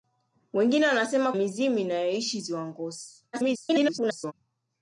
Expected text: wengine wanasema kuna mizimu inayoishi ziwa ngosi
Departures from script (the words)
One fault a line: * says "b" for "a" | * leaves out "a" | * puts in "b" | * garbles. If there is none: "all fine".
* leaves out "kuna"
* garbles